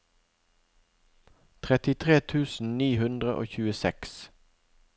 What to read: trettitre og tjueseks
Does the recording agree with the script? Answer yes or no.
no